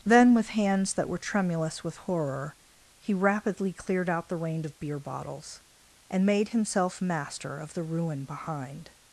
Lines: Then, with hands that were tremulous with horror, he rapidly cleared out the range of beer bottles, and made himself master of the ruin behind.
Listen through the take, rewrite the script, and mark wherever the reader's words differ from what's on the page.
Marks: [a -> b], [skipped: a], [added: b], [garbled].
Then, with hands that were tremulous with horror, he rapidly cleared out the range of beer bottles, and made himself master of the ruin behind.